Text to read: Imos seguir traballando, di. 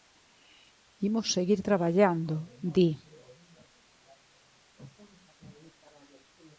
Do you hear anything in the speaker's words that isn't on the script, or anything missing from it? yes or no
no